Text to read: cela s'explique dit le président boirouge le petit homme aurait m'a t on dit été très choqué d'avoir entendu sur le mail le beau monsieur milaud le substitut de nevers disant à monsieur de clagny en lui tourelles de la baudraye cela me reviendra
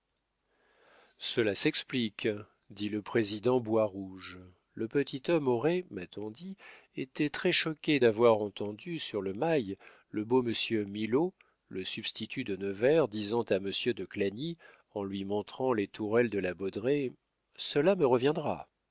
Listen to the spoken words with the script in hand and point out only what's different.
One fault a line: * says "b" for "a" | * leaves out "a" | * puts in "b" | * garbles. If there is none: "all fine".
* puts in "montrant les"